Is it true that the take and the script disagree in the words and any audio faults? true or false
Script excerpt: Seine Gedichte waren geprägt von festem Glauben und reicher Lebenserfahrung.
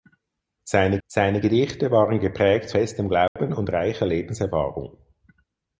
true